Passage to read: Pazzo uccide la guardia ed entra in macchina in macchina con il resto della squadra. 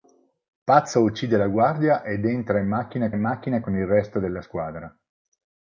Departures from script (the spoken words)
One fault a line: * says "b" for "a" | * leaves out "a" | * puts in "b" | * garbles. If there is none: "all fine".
all fine